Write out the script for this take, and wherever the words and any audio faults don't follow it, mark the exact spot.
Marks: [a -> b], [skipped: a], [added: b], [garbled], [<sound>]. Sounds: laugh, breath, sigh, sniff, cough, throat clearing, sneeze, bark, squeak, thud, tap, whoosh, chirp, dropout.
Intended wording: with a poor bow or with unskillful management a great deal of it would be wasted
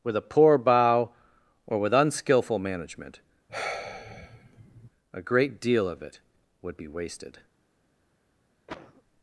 with a poor bow or with unskillful management [sigh] a great deal of it would be wasted [cough]